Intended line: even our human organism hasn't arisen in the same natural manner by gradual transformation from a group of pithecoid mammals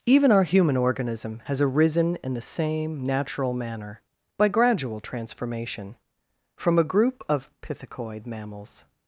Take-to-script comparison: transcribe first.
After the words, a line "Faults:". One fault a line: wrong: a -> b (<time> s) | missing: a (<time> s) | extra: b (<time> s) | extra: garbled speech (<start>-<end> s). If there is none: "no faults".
even our human organism has arisen in the same natural manner by gradual transformation from a group of pithecoid mammals
Faults:
wrong: hasn't -> has (1.4 s)